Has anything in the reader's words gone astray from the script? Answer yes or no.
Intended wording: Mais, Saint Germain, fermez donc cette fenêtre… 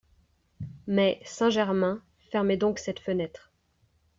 no